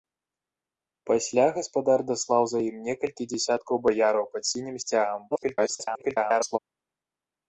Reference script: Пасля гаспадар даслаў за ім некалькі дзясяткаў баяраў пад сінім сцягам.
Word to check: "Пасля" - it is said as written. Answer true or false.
true